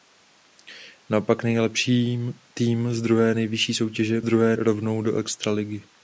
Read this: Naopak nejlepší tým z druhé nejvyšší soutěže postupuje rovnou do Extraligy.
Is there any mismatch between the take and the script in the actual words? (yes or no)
yes